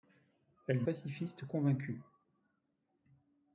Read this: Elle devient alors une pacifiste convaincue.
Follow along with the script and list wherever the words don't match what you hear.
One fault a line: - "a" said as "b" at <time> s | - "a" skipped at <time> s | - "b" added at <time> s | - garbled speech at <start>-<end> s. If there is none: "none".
- "devient alors une" skipped at 0.8 s